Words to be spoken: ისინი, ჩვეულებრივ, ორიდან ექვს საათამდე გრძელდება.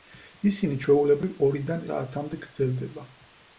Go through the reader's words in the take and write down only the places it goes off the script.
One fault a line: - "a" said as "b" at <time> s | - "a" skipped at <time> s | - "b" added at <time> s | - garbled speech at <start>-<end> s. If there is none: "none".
- "ექვს" skipped at 1.8 s